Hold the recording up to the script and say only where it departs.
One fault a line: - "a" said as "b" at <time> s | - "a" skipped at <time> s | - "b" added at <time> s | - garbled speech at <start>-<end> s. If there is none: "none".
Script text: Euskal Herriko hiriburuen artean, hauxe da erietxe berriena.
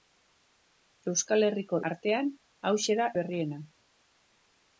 - "hiriburuen" skipped at 1.8 s
- "erietxe" skipped at 3.1 s